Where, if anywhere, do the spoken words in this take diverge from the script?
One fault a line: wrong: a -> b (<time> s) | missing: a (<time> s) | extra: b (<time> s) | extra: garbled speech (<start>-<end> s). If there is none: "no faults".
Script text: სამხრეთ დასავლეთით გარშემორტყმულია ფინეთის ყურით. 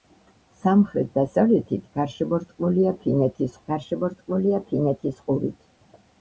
extra: გარშემორტყმულია ფინეთის (3.7 s)